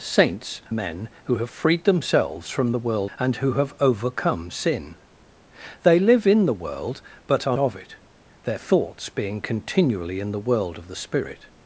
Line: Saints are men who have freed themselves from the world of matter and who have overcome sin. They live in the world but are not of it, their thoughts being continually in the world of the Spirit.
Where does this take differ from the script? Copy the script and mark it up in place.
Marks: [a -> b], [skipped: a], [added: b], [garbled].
Saints [skipped: are] men who have freed themselves from the world [skipped: of matter] and who have overcome sin. They live in the world but are [skipped: not] of it, their thoughts being continually in the world of the Spirit.